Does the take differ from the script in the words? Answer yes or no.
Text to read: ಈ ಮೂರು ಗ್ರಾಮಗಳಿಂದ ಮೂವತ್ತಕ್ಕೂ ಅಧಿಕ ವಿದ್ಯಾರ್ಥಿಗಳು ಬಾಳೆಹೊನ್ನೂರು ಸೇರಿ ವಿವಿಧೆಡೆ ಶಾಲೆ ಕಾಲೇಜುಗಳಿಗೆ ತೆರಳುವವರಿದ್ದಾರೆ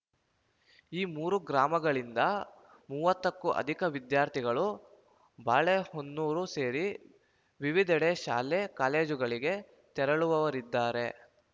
no